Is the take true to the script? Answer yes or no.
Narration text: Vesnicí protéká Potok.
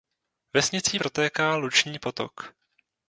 no